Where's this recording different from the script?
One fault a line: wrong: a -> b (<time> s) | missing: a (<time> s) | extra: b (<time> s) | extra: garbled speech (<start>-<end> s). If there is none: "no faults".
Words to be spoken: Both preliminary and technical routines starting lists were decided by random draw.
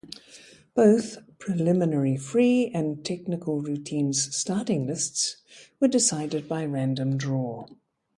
extra: free (2.2 s)